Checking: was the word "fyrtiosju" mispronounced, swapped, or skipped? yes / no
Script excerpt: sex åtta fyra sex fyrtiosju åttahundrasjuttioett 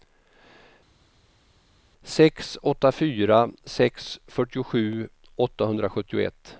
no